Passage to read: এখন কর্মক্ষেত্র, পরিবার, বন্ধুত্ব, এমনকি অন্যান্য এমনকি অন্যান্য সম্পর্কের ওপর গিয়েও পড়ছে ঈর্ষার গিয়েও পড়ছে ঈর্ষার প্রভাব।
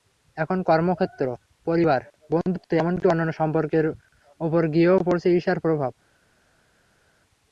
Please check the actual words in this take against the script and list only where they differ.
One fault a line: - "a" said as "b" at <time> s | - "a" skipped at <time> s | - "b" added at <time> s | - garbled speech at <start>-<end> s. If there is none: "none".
- "এমনকি অন্যান্য" skipped at 3.3 s
- "গিয়েও পড়ছে ঈর্ষার" skipped at 5.6 s